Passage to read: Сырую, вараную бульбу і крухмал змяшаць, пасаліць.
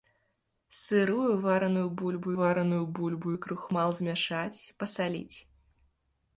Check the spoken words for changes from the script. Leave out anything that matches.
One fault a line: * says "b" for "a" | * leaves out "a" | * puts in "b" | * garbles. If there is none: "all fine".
* puts in "вараную бульбу"